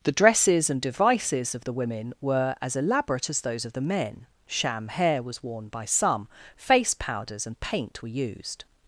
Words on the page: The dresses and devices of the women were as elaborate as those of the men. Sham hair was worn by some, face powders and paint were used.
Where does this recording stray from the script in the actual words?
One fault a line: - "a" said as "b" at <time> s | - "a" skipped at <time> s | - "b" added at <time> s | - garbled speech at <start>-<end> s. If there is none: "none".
none